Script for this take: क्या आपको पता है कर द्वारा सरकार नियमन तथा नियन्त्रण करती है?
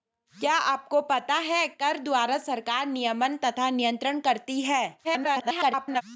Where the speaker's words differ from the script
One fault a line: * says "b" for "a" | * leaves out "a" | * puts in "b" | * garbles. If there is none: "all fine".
* garbles